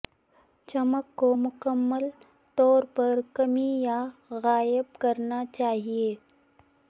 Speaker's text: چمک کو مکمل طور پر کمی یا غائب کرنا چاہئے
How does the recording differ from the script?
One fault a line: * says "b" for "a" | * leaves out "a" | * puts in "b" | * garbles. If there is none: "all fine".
all fine